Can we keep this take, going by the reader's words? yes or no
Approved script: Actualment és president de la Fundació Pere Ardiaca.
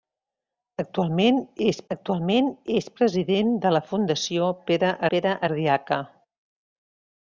no